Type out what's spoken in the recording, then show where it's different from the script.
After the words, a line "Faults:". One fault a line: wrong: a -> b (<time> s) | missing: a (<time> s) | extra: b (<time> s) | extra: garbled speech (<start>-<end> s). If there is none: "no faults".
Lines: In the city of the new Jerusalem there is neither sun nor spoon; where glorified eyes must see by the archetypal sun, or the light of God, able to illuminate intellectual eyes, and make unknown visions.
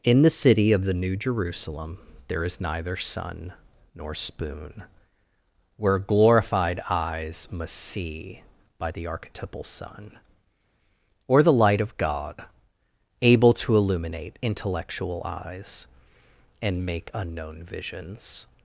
In the city of the new Jerusalem there is neither sun nor spoon; where glorified eyes must see by the archetypal sun, or the light of God, able to illuminate intellectual eyes, and make unknown visions.
Faults:
no faults